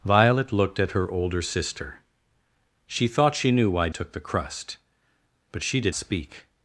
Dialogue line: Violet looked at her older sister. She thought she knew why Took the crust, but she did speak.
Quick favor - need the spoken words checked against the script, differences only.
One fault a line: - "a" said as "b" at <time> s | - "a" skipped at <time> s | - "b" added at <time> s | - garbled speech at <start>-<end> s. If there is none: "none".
none